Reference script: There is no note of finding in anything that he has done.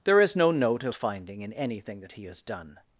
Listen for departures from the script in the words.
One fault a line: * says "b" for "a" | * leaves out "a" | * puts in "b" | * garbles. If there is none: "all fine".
all fine